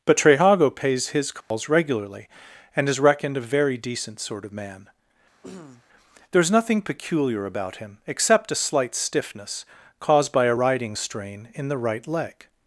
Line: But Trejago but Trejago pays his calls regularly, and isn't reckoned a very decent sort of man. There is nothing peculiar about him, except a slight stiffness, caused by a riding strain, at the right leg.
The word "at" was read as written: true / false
false